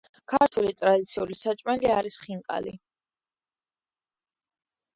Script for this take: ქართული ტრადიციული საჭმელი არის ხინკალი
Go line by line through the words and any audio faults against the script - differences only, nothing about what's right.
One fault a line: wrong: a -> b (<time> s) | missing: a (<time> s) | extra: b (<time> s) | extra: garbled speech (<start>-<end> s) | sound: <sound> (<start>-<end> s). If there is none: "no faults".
no faults